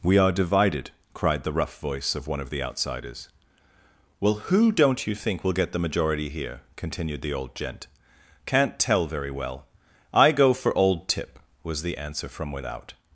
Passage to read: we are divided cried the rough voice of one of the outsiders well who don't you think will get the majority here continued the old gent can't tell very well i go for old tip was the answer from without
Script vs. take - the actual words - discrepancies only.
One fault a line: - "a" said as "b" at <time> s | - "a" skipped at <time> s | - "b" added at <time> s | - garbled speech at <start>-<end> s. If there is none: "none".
none